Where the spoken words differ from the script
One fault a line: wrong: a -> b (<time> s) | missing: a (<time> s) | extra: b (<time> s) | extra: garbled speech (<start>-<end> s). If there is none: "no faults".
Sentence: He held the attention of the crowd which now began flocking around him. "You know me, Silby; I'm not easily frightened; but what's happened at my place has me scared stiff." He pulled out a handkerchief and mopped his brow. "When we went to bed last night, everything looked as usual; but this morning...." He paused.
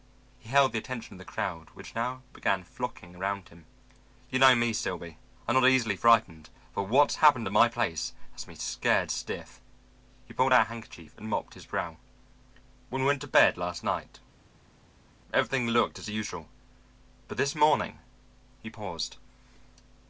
no faults